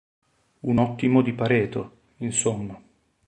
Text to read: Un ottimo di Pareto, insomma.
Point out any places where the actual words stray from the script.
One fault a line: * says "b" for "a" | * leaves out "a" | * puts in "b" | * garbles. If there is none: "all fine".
all fine